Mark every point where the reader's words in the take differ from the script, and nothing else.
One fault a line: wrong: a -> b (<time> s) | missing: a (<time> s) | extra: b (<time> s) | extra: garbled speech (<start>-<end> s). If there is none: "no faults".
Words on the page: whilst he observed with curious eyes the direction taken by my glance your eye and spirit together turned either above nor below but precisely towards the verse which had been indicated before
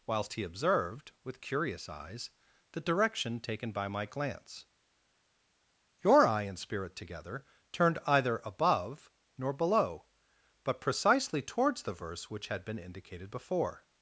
no faults